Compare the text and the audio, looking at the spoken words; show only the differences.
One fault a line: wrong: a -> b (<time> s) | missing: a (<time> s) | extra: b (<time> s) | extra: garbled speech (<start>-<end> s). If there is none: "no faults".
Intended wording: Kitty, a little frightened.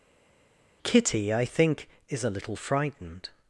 extra: I think is (1.3 s)